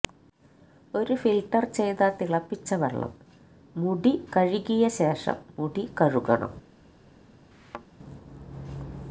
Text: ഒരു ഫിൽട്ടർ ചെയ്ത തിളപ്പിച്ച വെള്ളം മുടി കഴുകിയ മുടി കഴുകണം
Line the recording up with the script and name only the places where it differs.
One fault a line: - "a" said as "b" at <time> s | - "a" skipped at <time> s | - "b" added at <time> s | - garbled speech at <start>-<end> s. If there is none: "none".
- "ശേഷം" added at 5.0 s